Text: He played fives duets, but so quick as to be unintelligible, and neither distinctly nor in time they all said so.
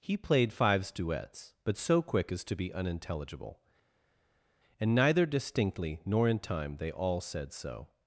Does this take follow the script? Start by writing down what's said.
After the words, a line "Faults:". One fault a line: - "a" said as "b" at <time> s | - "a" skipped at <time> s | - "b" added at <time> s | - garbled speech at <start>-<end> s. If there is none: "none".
He played fives duets, but so quick as to be unintelligible, and neither distinctly nor in time they all said so.
Faults:
none